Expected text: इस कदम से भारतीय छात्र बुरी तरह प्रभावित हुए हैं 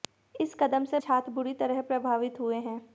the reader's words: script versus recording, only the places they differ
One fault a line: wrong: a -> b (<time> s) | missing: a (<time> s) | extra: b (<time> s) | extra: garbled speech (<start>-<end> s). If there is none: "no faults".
missing: भारतीय (1.0 s)